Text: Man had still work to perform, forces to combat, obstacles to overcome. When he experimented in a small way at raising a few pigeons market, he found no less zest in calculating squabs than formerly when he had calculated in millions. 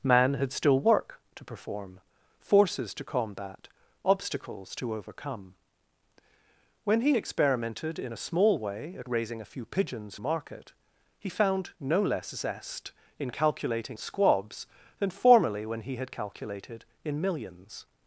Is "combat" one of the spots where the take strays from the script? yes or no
no